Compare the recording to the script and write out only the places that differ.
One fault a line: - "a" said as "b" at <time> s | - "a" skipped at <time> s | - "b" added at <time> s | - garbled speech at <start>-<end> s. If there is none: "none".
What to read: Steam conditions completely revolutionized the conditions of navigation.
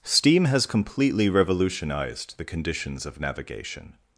- "conditions" said as "has" at 0.5 s